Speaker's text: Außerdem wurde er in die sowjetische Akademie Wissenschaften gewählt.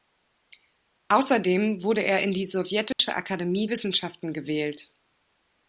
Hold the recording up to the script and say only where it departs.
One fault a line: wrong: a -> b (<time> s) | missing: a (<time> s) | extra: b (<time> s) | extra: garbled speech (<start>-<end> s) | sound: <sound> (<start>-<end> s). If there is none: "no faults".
sound: dropout (2.9-3.0 s)